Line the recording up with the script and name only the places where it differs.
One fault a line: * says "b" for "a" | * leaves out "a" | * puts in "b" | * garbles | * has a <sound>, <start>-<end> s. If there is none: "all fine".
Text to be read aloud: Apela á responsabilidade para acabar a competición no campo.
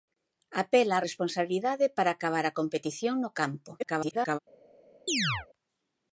* garbles
* has a chirp, 5.1-5.5 s